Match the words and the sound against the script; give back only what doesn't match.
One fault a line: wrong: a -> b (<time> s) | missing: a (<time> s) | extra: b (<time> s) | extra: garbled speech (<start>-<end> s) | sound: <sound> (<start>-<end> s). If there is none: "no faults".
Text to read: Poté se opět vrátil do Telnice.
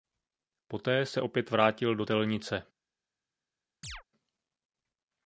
sound: chirp (3.8-4.0 s)